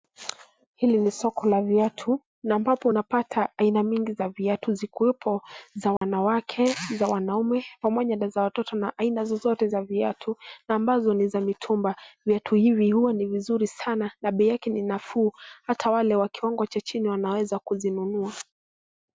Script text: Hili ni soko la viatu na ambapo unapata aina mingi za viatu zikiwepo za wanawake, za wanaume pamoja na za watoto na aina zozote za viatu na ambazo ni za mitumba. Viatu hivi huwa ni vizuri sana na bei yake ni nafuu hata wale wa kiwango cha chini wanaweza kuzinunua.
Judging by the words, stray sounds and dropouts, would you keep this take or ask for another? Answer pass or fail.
fail